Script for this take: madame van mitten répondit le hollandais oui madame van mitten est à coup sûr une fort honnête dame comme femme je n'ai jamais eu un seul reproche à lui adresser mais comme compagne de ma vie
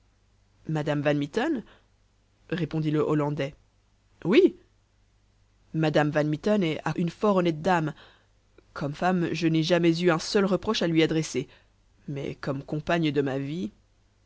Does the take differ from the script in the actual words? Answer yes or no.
yes